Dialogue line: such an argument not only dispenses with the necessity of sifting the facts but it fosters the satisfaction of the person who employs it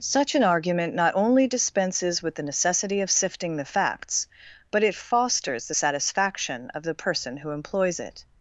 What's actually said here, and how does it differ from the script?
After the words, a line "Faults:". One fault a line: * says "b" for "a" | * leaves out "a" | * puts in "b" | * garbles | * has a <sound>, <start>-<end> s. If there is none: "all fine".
such an argument not only dispenses with the necessity of sifting the facts but it fosters the satisfaction of the person who employs it
Faults:
all fine